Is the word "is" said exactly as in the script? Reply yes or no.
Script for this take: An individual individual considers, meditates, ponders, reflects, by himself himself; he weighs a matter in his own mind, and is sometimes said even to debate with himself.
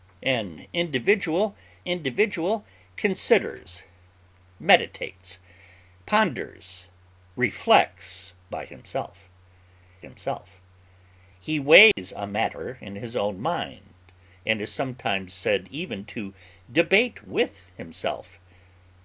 yes